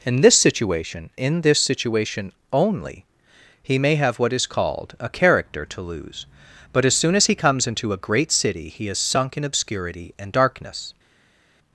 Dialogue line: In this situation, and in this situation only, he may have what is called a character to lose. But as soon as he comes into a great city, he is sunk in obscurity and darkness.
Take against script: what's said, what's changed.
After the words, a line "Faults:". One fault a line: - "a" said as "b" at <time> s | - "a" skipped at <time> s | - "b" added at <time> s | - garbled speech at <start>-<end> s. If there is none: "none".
In this situation, in this situation only, he may have what is called a character to lose. But as soon as he comes into a great city, he is sunk in obscurity and darkness.
Faults:
- "and" skipped at 1.1 s